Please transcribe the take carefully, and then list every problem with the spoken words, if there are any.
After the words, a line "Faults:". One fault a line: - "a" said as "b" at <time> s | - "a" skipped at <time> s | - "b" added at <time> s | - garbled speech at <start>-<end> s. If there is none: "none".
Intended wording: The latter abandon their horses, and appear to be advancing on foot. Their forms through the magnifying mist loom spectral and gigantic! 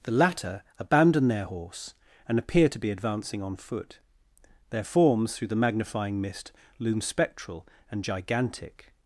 The latter abandon their horse, and appear to be advancing on foot. Their forms through the magnifying mist loom spectral and gigantic!
Faults:
- "horses" said as "horse" at 1.4 s